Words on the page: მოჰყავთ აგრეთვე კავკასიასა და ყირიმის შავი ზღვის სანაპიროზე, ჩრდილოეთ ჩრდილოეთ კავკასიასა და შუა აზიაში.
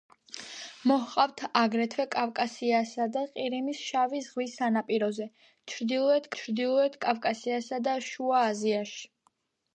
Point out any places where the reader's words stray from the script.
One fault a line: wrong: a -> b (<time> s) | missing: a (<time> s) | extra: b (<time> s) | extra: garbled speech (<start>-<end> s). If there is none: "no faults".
no faults